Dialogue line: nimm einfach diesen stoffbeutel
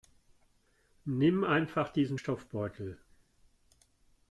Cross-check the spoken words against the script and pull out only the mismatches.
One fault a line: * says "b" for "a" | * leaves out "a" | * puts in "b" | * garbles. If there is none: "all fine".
all fine